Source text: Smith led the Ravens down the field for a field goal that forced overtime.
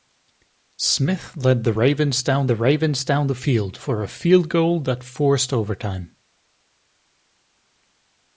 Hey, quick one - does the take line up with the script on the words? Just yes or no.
no